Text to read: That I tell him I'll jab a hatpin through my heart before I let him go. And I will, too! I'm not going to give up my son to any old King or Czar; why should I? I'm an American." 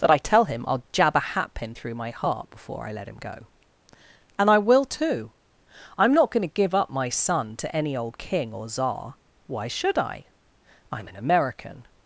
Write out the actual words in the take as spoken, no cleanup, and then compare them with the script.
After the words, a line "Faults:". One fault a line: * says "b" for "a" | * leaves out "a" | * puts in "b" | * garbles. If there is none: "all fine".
That I tell him I'll jab a hatpin through my heart before I let him go. And I will, too! I'm not going to give up my son to any old King or Czar; why should I? I'm an American."
Faults:
all fine